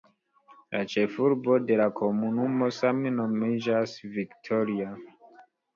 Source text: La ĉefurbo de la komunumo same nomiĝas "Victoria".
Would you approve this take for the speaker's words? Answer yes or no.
yes